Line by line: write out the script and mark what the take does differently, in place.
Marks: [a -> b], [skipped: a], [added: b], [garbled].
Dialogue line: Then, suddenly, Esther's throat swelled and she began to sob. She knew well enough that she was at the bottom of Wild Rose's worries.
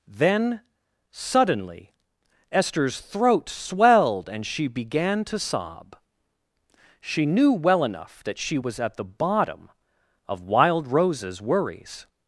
Then, suddenly, Esther's throat swelled and she began to sob. She knew well enough that she was at the bottom of Wild Rose's worries.